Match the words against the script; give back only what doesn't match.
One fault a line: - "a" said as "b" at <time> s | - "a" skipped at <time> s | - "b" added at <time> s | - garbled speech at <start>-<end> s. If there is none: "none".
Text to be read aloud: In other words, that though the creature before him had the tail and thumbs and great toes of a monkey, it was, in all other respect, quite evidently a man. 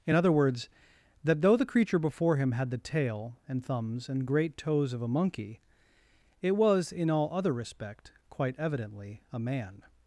none